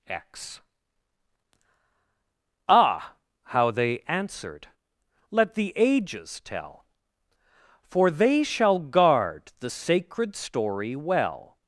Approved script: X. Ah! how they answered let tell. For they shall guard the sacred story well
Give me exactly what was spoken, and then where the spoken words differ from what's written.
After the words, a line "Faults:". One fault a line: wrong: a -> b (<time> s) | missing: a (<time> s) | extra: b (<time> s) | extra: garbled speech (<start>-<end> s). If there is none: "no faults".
X. Ah! how they answered let the ages tell. For they shall guard the sacred story well
Faults:
extra: the ages (5.5 s)